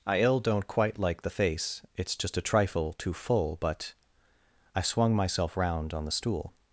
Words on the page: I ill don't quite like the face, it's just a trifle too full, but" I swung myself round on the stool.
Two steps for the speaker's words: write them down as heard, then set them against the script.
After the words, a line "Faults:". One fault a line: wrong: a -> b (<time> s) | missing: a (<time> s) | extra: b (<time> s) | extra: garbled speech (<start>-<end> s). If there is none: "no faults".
I ill don't quite like the face, it's just a trifle too full, but" I swung myself round on the stool.
Faults:
no faults